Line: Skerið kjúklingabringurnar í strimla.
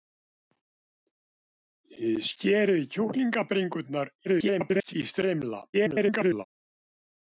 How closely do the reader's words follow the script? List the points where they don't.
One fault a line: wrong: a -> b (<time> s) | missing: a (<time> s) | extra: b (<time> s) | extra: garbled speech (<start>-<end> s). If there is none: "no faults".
extra: garbled speech (4.2-4.9 s)
extra: garbled speech (5.7-6.5 s)